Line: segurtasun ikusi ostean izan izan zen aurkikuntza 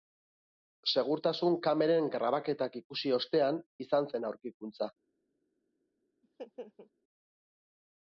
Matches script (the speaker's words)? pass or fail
fail